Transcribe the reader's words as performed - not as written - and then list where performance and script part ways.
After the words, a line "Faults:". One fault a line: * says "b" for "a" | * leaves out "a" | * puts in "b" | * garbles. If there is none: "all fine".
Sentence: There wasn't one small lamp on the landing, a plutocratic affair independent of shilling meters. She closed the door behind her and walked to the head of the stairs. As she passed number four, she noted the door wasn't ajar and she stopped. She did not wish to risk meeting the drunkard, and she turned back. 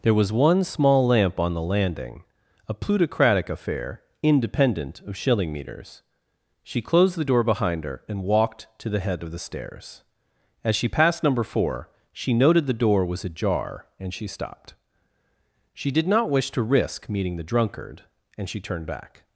There was one small lamp on the landing, a plutocratic affair independent of shilling meters. She closed the door behind her and walked to the head of the stairs. As she passed number four, she noted the door was ajar and she stopped. She did not wish to risk meeting the drunkard, and she turned back.
Faults:
* says "was" for "wasn't"
* says "was" for "wasn't"